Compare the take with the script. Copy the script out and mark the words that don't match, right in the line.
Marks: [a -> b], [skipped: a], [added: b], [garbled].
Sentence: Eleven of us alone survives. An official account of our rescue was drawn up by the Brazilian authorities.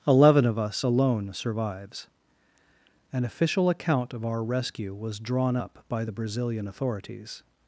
Eleven of us alone survives. An official account of our rescue was drawn up by the Brazilian authorities.